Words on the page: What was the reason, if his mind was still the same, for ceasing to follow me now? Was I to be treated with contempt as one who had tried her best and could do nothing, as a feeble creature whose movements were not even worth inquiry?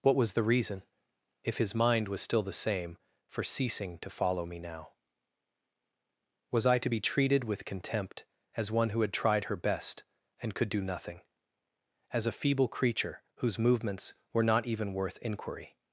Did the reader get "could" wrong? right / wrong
right